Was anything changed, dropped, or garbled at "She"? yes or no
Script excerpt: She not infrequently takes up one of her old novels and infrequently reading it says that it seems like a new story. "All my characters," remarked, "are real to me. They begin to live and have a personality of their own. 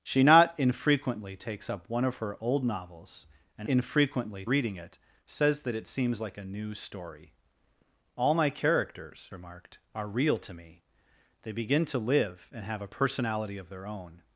no